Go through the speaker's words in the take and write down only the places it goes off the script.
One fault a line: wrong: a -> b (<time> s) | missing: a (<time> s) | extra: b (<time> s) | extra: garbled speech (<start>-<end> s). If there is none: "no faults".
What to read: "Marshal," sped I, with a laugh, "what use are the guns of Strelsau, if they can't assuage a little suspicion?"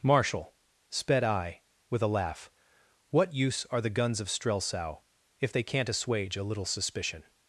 no faults